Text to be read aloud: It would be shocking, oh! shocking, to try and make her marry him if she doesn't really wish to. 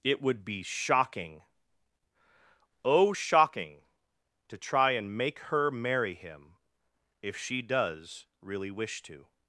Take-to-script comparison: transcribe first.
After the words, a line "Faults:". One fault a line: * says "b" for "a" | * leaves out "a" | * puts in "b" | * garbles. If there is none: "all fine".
It would be shocking, oh! shocking, to try and make her marry him if she does really wish to.
Faults:
* says "does" for "doesn't"